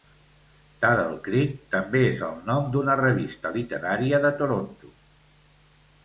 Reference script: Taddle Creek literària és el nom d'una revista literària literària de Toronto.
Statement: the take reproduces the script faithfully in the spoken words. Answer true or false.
false